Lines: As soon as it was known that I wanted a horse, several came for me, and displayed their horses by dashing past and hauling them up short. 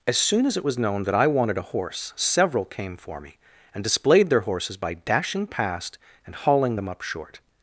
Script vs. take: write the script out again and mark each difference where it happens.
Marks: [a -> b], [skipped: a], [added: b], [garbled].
As soon as it was known that I wanted a horse, several came for me, and displayed their horses by dashing past and hauling them up short.